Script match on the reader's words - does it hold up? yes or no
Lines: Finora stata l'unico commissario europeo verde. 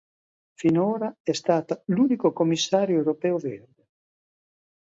no